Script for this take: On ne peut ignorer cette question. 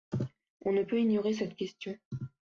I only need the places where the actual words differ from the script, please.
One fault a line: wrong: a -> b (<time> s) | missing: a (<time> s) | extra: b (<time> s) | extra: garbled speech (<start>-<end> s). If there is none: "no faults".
no faults